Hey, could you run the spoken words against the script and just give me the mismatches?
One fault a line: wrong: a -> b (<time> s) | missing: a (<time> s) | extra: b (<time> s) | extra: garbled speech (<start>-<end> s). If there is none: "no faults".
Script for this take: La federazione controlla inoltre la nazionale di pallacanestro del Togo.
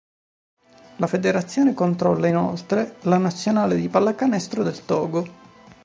no faults